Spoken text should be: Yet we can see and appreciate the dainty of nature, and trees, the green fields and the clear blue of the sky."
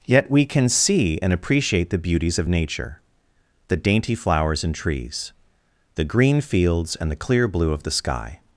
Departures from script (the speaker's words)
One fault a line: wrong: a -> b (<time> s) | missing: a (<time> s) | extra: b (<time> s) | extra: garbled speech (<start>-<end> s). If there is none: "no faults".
wrong: dainty -> beauties (2.0 s)
extra: the dainty flowers (3.7 s)